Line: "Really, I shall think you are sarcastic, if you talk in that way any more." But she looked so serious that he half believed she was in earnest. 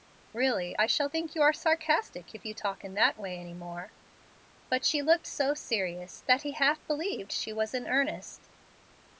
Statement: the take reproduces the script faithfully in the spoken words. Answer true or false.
true